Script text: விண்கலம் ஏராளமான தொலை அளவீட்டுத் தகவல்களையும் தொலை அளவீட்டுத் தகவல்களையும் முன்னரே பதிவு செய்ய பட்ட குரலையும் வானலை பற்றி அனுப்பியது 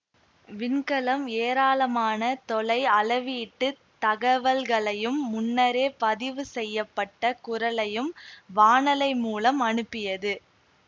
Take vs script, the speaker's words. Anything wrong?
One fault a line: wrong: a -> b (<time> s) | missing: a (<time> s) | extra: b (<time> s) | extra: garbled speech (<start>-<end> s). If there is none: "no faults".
missing: தொலை அளவீட்டுத் தகவல்களையும் (5.2 s)
wrong: பற்றி -> மூலம் (9.2 s)